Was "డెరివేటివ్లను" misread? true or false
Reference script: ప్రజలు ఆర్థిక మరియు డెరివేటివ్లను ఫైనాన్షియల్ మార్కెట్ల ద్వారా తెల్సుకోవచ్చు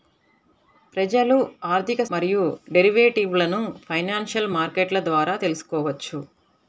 false